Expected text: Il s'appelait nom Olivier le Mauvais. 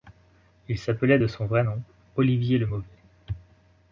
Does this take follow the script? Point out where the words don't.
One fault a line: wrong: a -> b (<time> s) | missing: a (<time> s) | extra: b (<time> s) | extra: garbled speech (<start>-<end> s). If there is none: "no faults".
extra: de son vrai (1.2 s)